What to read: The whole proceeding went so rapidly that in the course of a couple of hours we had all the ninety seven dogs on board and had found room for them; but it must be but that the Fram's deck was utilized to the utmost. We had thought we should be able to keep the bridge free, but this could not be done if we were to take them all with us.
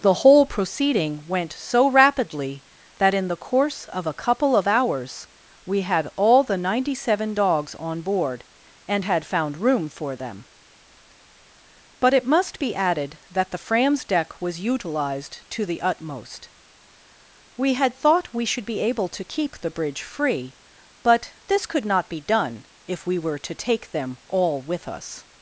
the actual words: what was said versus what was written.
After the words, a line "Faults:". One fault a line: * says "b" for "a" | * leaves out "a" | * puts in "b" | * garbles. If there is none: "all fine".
The whole proceeding went so rapidly that in the course of a couple of hours we had all the ninety seven dogs on board and had found room for them; but it must be added that the Fram's deck was utilized to the utmost. We had thought we should be able to keep the bridge free, but this could not be done if we were to take them all with us.
Faults:
* says "added" for "but"